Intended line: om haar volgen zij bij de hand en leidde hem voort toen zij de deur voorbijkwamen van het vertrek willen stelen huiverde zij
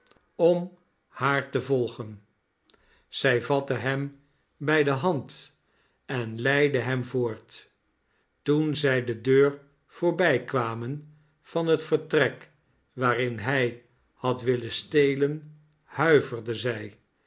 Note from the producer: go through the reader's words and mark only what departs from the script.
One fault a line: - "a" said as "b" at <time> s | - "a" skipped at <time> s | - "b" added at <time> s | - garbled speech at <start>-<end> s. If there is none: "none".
- "te" added at 1.5 s
- "vatte hem" added at 3.4 s
- "waarin hij had" added at 12.9 s